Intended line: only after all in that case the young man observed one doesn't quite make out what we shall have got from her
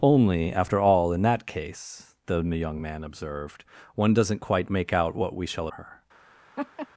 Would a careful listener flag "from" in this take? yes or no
yes